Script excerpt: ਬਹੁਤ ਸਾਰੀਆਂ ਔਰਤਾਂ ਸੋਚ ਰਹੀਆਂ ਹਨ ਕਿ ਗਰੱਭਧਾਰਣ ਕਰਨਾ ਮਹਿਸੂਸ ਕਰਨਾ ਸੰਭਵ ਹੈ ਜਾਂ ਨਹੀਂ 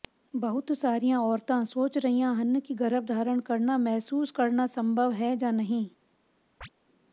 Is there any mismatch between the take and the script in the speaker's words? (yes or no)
no